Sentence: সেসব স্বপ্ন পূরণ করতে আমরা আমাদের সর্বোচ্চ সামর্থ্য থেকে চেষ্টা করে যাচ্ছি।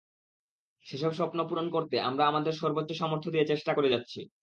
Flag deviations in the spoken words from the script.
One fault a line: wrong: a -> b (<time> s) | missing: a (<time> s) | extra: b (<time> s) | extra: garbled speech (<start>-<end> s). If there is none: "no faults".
wrong: থেকে -> দিয়ে (3.3 s)